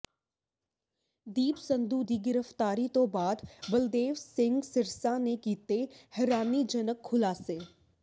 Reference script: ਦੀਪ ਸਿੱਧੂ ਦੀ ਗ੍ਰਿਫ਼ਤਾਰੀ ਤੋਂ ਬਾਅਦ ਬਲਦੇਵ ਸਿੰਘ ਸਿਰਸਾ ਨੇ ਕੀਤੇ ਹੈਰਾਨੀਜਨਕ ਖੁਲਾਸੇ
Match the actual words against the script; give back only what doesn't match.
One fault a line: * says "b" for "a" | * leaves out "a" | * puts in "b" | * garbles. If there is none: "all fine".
all fine